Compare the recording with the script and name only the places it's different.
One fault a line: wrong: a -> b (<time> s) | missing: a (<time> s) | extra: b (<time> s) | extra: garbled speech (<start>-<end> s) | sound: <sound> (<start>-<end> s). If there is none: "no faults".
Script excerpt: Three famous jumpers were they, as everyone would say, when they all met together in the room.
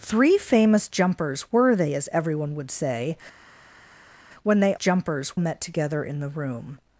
wrong: all -> jumpers (4.7 s)